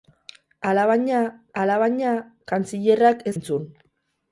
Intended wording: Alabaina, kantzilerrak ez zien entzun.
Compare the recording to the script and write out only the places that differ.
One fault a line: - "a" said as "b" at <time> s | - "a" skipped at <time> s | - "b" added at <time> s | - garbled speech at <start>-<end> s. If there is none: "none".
- "alabaina" added at 1.6 s
- "zien" skipped at 3.3 s